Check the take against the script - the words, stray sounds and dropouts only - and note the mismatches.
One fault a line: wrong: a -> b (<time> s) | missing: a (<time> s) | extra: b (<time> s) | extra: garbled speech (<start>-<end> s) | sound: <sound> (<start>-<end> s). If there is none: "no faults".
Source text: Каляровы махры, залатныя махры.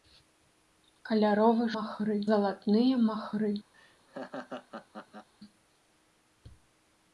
sound: laugh (3.7-5.3 s)